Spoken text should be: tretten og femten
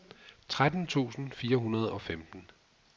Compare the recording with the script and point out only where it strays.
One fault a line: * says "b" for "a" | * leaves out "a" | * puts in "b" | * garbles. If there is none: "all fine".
* puts in "tusind fire hundrede"